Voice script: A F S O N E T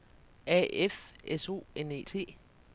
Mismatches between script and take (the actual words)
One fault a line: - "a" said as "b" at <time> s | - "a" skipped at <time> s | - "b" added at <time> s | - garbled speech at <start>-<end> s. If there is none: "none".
none